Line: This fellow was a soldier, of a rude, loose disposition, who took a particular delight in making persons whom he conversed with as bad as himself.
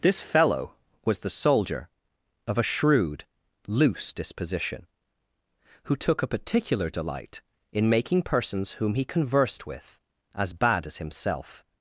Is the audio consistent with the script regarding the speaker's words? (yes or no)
no